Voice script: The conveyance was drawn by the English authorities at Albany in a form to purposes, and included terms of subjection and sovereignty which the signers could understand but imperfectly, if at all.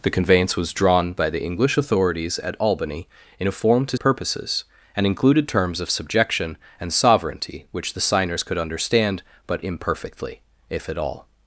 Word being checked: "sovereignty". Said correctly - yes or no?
yes